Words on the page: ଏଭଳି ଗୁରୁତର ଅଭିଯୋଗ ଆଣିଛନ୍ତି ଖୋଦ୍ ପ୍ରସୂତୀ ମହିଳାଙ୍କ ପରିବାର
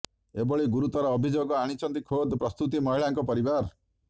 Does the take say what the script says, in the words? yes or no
yes